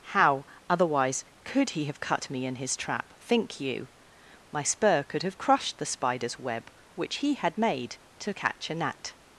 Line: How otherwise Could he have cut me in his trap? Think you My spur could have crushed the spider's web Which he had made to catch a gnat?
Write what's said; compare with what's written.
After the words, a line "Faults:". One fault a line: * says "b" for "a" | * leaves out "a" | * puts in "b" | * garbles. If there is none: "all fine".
How otherwise Could he have cut me in his trap? Think you My spur could have crushed the spider's web Which he had made to catch a gnat?
Faults:
all fine